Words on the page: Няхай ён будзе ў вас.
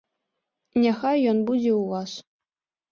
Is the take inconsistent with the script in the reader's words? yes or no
no